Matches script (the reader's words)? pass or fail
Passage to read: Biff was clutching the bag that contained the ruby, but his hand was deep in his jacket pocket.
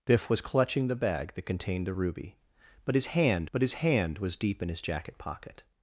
fail